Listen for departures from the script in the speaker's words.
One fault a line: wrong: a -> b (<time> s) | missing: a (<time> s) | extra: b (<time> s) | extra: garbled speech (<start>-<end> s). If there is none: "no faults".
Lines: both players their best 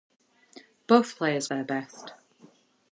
no faults